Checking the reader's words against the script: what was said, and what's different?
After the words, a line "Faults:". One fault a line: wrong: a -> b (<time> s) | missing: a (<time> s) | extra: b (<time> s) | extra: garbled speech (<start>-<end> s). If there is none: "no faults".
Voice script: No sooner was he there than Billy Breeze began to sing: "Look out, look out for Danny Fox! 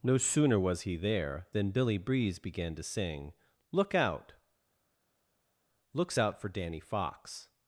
No sooner was he there than Billy Breeze began to sing: "Look out, looks out for Danny Fox!
Faults:
wrong: look -> looks (5.9 s)